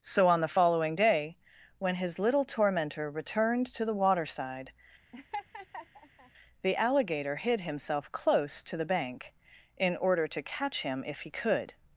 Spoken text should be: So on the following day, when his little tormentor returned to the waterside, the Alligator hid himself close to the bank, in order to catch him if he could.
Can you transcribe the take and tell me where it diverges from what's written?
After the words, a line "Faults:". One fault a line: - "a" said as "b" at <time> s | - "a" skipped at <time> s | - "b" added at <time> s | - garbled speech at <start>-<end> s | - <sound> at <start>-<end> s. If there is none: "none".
So on the following day, when his little tormentor returned to the waterside, the Alligator hid himself close to the bank, in order to catch him if he could.
Faults:
- laugh at 5.1-6.3 s